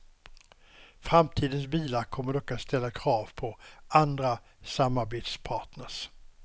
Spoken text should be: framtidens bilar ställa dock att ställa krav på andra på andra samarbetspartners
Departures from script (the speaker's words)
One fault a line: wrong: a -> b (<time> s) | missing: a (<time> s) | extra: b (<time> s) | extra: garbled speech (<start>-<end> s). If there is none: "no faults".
wrong: ställa -> kommer (2.0 s)
missing: på andra (4.4 s)